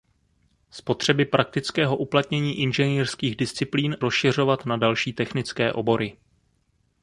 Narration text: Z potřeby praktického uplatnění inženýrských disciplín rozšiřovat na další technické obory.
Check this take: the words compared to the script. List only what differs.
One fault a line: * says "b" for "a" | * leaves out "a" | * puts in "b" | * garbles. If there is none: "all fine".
all fine